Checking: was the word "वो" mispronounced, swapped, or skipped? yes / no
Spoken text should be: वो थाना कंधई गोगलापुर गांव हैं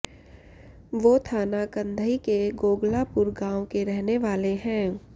no